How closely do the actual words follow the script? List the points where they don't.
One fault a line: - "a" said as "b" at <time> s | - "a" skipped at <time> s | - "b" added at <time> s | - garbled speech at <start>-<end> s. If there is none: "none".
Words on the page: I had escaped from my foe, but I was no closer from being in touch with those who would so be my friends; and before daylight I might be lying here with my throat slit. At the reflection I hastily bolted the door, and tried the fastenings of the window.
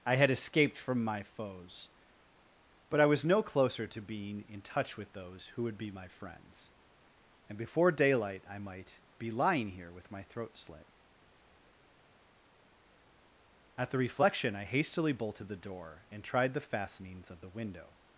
- "foe" said as "foes" at 1.2 s
- "from" said as "to" at 3.9 s
- "so" skipped at 5.8 s